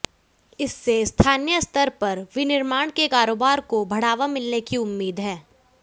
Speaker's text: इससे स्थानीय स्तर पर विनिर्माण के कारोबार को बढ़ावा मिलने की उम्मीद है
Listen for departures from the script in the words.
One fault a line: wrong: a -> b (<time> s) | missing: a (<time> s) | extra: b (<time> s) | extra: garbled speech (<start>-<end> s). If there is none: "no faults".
no faults